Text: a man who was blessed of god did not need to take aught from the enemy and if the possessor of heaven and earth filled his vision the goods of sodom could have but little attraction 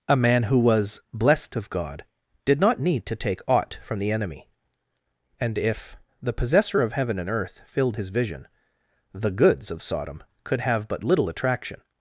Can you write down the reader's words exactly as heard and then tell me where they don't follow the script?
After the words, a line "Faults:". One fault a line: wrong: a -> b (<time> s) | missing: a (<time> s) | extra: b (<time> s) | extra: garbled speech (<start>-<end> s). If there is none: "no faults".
a man who was blessed of god did not need to take aught from the enemy and if the possessor of heaven and earth filled his vision the goods of sodom could have but little attraction
Faults:
no faults